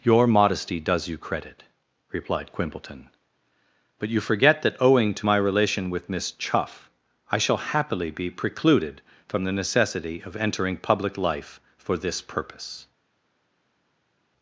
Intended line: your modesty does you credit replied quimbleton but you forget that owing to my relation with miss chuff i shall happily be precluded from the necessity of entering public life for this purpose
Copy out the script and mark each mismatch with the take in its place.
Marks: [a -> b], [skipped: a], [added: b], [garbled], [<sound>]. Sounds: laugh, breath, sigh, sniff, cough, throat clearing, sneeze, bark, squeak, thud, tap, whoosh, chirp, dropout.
your modesty does you credit replied quimbleton but you forget that owing to my relation with miss chuff i shall happily be precluded from the necessity of entering public life for this purpose